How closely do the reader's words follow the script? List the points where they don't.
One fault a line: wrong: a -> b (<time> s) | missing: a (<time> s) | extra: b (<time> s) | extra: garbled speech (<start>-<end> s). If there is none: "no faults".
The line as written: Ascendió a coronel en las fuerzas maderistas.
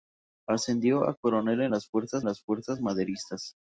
extra: las fuerzas (2.3 s)